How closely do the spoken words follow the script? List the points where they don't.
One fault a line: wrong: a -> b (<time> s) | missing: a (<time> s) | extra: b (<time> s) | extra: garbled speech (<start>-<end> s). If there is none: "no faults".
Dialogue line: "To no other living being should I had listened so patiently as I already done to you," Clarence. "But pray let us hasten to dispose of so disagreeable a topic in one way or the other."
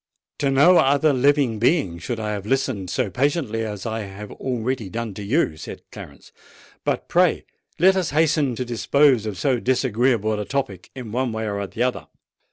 wrong: had -> have (2.3 s)
extra: have (4.0 s)
extra: said (5.6 s)